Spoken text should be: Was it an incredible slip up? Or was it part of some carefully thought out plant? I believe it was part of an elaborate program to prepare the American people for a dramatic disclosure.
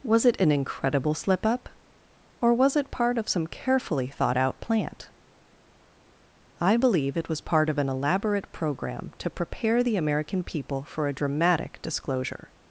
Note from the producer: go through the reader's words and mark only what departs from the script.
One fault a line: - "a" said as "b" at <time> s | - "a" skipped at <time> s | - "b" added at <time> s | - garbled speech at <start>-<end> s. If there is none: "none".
none